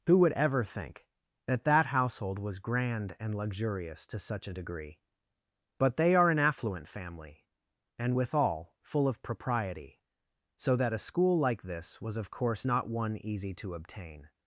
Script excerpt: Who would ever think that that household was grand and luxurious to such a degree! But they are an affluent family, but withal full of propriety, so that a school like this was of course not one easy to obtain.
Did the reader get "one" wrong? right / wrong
right